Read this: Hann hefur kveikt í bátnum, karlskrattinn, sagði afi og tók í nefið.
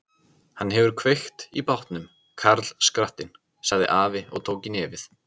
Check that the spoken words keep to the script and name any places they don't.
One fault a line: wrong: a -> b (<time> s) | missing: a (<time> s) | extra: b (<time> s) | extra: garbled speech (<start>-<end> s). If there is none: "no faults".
no faults